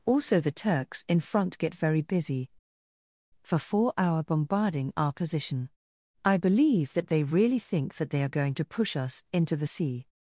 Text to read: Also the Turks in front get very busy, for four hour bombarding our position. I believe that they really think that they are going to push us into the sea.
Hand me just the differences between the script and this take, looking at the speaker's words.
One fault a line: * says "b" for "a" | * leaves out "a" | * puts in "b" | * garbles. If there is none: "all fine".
all fine